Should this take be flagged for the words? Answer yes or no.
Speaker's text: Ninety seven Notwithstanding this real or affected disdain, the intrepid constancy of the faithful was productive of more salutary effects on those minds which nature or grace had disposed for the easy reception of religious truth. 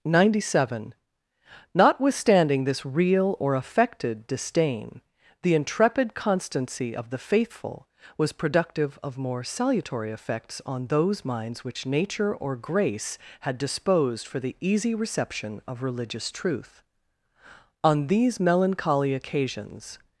yes